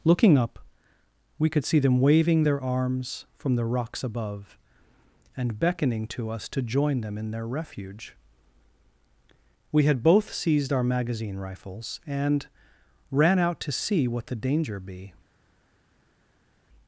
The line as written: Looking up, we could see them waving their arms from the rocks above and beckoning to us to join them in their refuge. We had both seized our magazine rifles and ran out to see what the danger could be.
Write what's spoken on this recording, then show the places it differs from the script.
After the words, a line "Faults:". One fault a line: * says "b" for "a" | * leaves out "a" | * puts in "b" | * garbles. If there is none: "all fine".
Looking up, we could see them waving their arms from the rocks above and beckoning to us to join them in their refuge. We had both seized our magazine rifles and ran out to see what the danger be.
Faults:
* leaves out "could"